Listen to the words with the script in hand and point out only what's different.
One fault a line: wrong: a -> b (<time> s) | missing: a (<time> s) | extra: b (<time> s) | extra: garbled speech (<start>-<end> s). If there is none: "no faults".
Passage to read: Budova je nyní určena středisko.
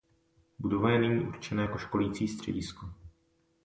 extra: jako školící (1.6 s)